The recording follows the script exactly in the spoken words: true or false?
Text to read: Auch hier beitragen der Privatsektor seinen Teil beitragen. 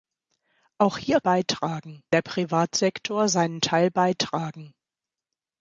true